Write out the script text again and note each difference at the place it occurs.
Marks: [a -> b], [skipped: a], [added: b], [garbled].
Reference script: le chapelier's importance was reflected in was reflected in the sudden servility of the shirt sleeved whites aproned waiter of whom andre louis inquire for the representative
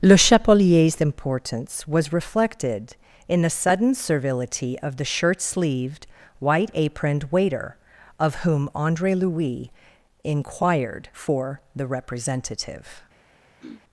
le chapelier's importance was reflected in [skipped: was reflected in] the sudden servility of the shirt sleeved [whites -> white] aproned waiter of whom andre louis [inquire -> inquired] for the representative